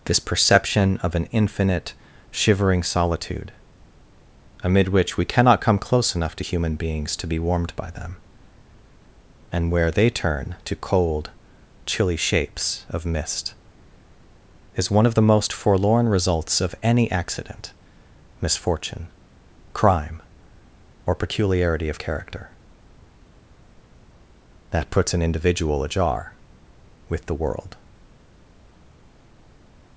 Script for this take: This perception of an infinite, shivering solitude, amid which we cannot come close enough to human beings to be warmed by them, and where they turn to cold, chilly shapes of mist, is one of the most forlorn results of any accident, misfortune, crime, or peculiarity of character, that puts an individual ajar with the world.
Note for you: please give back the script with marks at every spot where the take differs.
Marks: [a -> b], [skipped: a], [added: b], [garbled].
This perception of an infinite, shivering solitude, amid which we cannot come close enough to human beings to be warmed by them, and where they turn to cold, chilly shapes of mist, is one of the most forlorn results of any accident, misfortune, crime, or peculiarity of character, that puts an individual ajar with the world.